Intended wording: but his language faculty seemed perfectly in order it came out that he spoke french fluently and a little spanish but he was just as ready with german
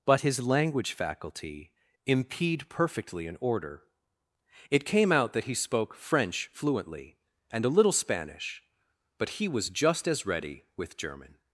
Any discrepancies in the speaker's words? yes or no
yes